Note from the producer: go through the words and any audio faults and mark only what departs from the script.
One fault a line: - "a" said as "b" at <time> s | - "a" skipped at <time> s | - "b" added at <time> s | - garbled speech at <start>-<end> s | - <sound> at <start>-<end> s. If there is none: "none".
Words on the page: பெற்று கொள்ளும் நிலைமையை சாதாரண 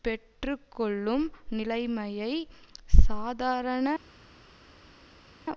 none